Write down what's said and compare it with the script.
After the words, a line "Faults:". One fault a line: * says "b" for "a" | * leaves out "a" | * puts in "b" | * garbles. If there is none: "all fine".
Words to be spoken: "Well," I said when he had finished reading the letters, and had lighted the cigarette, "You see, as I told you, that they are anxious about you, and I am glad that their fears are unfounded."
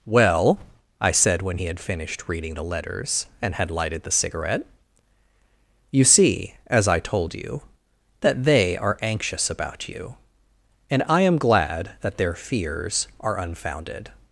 "Well," I said when he had finished reading the letters, and had lighted the cigarette, "You see, as I told you, that they are anxious about you, and I am glad that their fears are unfounded."
Faults:
all fine